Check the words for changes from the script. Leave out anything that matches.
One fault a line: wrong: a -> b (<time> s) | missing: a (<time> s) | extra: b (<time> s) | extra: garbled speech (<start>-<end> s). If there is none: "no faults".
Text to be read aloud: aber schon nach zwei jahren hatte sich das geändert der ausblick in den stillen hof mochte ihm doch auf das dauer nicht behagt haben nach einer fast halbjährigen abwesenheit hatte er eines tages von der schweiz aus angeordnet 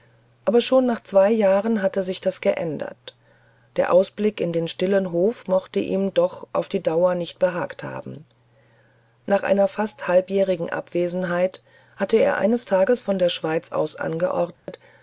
wrong: das -> die (6.7 s)